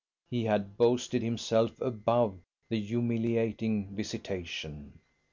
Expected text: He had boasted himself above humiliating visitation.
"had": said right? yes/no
yes